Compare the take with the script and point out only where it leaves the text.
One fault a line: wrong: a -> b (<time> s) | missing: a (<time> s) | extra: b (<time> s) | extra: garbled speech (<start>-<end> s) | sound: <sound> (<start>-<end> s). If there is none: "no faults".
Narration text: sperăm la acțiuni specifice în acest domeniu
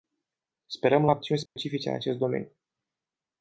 sound: dropout (1.5-1.6 s)